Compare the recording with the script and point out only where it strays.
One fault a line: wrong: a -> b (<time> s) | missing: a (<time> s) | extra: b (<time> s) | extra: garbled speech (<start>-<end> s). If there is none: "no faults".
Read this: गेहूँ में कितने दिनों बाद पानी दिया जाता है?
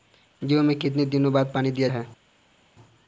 missing: जाता (1.9 s)